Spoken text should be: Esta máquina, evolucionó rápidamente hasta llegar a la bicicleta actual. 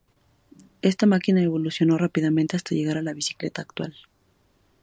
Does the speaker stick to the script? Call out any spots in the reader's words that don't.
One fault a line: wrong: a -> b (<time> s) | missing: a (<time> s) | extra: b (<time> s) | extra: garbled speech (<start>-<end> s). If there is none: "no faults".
no faults